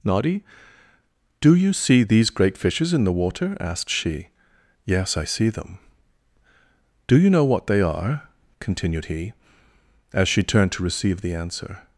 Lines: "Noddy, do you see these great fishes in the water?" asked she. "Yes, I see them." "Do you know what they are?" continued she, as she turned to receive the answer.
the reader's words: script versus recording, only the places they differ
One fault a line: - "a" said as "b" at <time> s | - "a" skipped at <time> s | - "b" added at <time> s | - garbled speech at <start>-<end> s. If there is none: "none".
- "she" said as "he" at 9.0 s